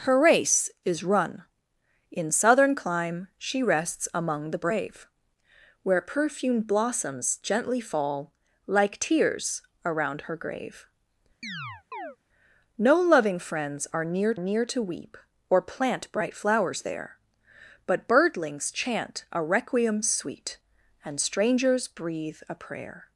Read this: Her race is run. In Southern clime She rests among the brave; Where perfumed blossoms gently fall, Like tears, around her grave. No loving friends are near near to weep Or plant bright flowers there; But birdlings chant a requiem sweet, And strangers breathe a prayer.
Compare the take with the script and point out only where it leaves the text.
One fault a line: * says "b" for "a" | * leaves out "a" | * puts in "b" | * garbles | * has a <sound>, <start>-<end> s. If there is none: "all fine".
* has a chirp, 11.4-12.2 s